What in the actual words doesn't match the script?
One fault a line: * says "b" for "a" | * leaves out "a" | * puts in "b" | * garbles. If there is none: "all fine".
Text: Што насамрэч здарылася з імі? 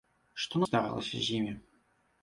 * leaves out "насамрэч"